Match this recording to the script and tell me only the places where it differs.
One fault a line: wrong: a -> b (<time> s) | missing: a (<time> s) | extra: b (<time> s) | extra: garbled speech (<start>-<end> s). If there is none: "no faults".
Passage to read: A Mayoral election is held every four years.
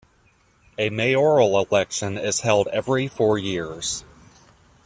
no faults